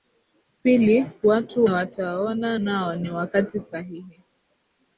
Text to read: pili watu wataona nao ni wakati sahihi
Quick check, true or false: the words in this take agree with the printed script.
true